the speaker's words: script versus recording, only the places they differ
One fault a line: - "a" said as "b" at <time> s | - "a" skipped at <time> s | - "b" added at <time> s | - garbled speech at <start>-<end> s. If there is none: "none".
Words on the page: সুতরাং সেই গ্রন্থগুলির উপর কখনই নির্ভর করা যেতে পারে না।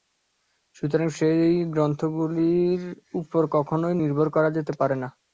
none